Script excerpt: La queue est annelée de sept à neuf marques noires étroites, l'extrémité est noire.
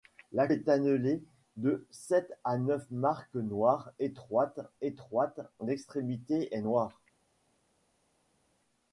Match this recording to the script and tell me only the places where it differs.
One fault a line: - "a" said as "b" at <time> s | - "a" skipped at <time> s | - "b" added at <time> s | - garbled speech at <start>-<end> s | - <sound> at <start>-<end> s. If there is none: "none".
- "queue" skipped at 0.5 s
- "étroites" added at 4.8 s